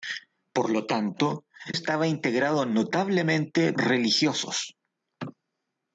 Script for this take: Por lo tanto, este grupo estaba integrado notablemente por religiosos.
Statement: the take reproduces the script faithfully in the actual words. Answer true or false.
false